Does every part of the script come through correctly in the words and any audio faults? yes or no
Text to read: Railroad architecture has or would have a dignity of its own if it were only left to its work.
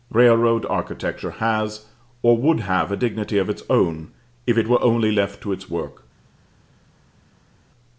yes